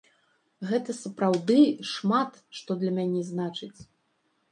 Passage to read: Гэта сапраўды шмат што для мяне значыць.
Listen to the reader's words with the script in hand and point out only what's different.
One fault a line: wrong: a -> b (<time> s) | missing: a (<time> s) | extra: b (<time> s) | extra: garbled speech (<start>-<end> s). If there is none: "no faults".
no faults